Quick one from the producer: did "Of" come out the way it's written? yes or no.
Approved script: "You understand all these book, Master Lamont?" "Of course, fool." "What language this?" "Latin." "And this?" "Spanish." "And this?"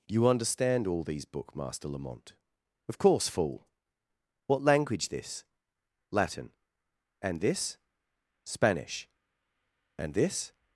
yes